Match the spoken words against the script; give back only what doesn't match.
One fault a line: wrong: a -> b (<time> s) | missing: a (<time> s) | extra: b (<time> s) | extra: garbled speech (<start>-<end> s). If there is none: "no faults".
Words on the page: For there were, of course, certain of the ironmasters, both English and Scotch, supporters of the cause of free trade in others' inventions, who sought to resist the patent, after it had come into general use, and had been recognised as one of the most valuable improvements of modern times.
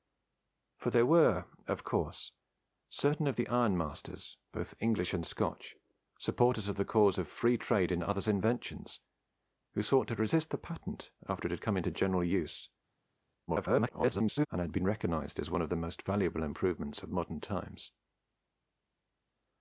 extra: garbled speech (13.5-14.5 s)